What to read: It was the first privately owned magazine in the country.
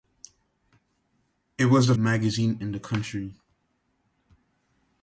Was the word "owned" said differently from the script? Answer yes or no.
yes